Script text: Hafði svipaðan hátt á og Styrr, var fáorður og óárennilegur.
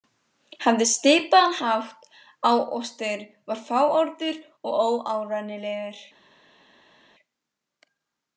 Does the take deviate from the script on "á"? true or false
false